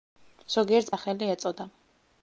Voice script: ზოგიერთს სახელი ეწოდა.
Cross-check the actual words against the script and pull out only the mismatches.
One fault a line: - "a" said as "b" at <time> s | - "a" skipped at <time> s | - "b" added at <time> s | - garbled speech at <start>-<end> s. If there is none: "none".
none